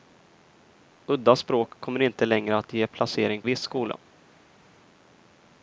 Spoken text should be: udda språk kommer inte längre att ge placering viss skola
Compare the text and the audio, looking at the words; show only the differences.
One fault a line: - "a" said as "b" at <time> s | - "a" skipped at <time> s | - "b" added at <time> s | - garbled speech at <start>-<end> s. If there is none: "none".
none